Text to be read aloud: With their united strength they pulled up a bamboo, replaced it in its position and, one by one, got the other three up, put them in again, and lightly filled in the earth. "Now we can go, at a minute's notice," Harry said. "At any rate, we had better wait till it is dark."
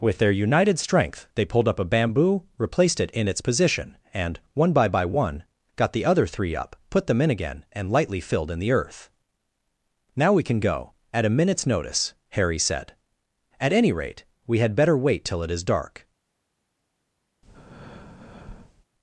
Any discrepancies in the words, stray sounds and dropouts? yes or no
yes